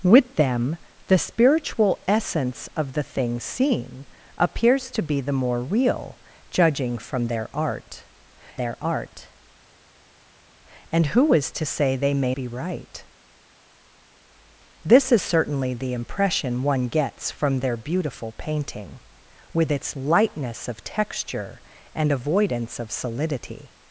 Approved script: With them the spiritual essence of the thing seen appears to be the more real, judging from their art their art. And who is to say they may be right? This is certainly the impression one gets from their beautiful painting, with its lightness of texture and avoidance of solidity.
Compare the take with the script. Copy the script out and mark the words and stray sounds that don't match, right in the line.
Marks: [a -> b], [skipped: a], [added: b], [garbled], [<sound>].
With them the spiritual essence of the thing seen appears to be the more real, judging from their art their art. And who is to say they may be right? This is certainly the impression one gets from their beautiful painting, with its lightness of texture and avoidance of solidity.